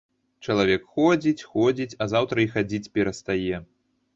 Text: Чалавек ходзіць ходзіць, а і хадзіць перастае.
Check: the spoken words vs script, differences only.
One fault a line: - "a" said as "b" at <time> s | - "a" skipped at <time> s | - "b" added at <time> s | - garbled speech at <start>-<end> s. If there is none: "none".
- "заўтра" added at 2.1 s